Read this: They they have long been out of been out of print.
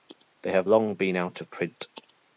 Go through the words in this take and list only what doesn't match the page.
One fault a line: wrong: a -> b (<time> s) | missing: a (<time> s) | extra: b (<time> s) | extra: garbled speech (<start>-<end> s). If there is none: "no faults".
missing: they (0.5 s)
missing: been out of (1.5 s)